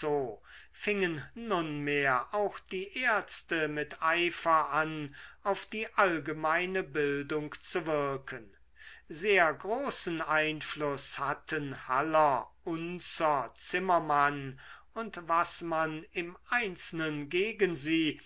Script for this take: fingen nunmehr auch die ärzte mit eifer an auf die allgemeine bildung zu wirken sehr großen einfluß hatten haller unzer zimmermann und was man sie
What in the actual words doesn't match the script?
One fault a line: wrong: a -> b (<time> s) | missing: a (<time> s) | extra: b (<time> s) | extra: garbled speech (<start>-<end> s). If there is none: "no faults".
extra: im einzelnen gegen (16.1 s)